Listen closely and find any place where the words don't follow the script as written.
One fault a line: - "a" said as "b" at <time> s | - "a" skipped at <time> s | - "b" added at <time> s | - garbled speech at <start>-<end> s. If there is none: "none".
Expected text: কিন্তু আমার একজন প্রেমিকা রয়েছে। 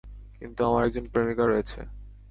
none